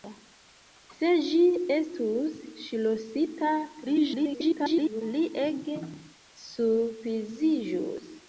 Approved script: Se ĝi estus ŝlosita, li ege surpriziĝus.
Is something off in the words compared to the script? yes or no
yes